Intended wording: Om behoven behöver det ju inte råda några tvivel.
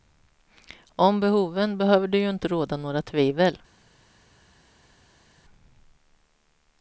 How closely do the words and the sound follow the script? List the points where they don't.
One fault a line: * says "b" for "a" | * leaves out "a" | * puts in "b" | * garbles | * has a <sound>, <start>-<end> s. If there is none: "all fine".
all fine